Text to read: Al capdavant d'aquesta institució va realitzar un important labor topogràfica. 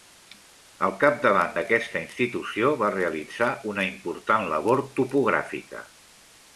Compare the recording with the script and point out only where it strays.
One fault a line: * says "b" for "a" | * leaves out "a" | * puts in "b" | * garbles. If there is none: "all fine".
* says "una" for "un"